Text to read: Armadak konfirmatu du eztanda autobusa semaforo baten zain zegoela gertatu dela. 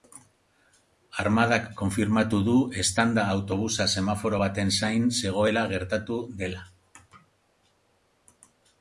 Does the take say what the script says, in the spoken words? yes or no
yes